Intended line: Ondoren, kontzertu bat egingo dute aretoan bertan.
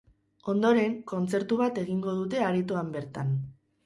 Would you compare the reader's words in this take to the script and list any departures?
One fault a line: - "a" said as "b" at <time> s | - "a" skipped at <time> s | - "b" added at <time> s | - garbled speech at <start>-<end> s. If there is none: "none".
none